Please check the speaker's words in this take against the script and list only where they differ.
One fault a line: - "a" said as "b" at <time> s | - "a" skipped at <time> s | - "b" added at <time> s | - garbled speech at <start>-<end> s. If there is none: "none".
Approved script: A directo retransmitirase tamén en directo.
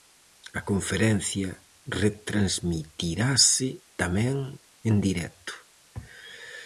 - "directo" said as "conferencia" at 0.7 s